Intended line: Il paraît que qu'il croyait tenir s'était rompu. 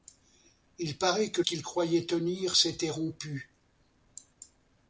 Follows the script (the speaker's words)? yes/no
yes